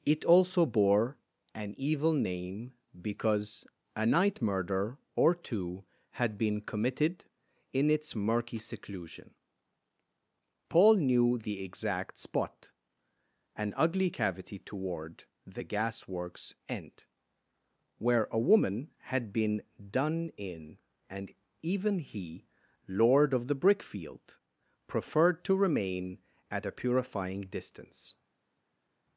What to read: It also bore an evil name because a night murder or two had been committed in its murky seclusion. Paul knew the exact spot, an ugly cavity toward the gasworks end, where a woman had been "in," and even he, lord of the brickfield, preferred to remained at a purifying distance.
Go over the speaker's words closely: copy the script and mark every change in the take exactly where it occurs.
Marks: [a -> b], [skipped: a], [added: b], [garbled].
It also bore an evil name because a night murder or two had been committed in its murky seclusion. Paul knew the exact spot, an ugly cavity toward the gasworks end, where a woman had been [added: done] "in," and even he, lord of the brickfield, preferred to [remained -> remain] at a purifying distance.